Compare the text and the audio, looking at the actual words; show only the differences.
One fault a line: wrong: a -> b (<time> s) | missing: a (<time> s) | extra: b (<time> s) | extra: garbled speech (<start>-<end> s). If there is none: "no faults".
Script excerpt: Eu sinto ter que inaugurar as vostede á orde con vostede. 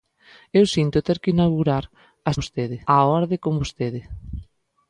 no faults